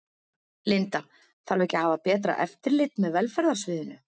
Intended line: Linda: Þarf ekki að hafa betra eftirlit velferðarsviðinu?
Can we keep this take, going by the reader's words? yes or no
no